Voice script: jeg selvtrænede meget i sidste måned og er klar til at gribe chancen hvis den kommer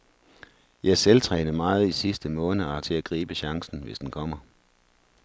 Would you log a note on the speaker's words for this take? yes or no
yes